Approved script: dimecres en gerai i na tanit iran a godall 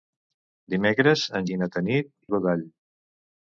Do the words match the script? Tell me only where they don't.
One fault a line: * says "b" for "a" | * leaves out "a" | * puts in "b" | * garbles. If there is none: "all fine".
* leaves out "gerai"
* leaves out "iran"